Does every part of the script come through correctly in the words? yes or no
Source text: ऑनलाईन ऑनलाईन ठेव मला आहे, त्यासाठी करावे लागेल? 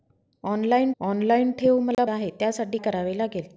yes